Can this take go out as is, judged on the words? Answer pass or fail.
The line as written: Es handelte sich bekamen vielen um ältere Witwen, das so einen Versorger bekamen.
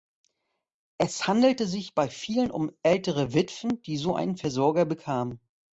fail